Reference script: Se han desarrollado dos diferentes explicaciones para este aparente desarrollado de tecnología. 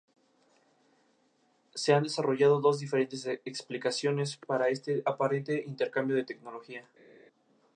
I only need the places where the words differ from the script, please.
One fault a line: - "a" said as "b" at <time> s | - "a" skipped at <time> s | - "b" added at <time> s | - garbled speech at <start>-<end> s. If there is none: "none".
- "desarrollado" said as "intercambio" at 5.6 s